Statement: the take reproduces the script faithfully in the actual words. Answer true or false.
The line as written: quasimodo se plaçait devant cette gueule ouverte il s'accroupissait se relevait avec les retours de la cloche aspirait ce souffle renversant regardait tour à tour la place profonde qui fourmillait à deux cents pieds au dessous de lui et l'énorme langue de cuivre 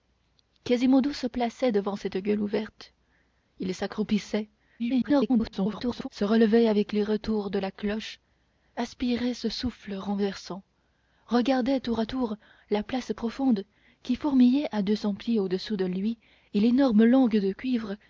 false